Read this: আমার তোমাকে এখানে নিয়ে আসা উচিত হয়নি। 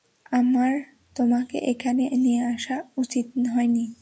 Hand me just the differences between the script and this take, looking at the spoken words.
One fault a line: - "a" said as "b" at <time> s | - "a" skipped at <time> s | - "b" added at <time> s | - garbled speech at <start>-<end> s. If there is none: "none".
none